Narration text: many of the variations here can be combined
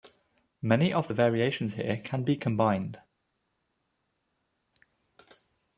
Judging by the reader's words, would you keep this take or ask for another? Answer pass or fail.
pass